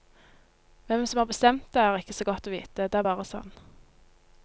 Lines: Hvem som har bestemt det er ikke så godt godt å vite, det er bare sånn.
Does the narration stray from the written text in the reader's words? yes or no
yes